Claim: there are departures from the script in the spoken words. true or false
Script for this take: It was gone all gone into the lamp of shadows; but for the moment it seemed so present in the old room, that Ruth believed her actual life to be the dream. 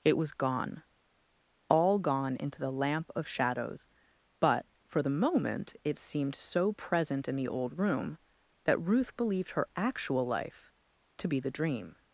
false